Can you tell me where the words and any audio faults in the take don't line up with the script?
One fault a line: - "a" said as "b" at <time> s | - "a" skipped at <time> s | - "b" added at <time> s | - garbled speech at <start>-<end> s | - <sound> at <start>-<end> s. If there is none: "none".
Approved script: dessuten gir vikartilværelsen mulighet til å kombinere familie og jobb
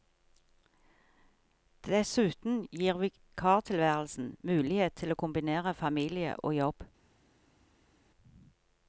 none